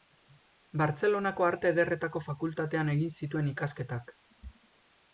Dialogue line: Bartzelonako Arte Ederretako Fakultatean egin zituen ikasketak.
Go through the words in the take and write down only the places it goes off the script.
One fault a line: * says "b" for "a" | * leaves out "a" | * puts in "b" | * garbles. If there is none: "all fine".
all fine